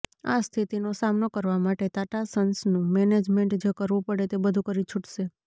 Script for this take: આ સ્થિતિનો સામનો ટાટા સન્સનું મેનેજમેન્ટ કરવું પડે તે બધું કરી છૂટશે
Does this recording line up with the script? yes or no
no